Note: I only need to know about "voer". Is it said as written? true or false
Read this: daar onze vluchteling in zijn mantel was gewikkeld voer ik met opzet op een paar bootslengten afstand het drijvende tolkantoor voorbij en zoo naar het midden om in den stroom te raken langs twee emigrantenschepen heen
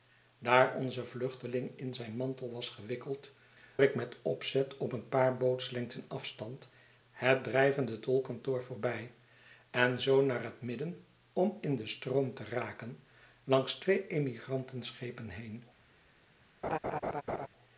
false